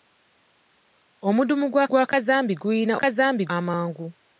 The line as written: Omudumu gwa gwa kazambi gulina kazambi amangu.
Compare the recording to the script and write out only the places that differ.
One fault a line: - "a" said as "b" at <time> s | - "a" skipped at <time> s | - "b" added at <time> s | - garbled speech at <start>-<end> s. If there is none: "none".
none